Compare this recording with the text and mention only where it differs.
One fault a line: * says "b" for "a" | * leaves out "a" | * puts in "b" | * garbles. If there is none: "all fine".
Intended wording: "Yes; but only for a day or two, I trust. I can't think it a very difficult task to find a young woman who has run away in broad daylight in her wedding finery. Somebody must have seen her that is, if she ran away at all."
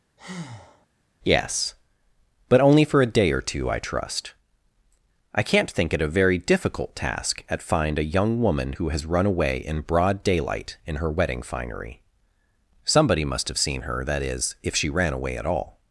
* says "at" for "to"